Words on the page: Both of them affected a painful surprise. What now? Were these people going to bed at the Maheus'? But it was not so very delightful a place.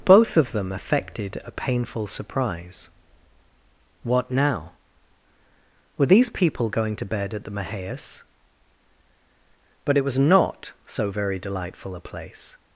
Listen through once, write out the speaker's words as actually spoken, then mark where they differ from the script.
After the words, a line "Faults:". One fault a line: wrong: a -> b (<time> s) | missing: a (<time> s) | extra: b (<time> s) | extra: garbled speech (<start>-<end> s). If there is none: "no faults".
Both of them affected a painful surprise. What now? Were these people going to bed at the Maheus'? But it was not so very delightful a place.
Faults:
no faults